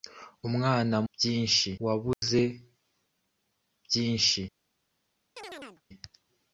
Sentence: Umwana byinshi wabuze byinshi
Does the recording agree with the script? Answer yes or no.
yes